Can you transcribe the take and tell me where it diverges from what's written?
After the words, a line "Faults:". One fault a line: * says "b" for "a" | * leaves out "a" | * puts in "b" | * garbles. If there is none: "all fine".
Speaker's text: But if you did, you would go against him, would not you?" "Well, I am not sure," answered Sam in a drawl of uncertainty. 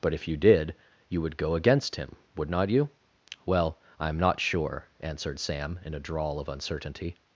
But if you did, you would go against him, would not you?" "Well, I am not sure," answered Sam in a drawl of uncertainty.
Faults:
all fine